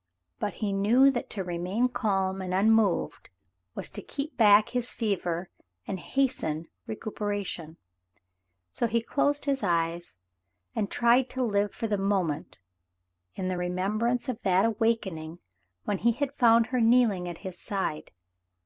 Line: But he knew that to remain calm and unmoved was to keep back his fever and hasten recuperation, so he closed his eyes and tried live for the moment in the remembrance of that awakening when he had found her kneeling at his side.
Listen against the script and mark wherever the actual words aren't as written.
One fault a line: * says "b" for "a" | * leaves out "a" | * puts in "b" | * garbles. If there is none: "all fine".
* puts in "to"